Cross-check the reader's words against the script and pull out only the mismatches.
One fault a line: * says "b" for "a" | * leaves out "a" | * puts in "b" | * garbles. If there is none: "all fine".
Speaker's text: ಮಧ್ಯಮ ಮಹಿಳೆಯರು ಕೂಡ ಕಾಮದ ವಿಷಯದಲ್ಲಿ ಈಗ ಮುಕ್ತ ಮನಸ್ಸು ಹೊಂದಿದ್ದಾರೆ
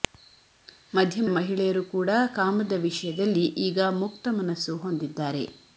all fine